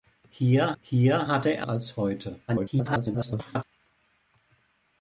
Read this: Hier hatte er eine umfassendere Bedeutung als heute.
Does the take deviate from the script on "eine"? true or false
true